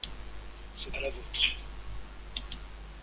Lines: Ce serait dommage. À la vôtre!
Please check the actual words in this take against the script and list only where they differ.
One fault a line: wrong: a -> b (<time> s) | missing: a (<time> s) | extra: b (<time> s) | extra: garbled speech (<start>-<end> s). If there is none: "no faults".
missing: serait dommage (0.9 s)